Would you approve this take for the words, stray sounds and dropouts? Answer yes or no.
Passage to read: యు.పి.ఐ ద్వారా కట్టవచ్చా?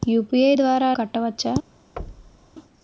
no